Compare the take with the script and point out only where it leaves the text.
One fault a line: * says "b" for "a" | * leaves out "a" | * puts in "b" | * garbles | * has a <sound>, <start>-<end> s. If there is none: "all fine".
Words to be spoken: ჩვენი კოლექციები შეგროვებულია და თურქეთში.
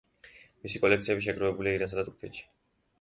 * says "მისი" for "ჩვენი"
* puts in "ირანსა"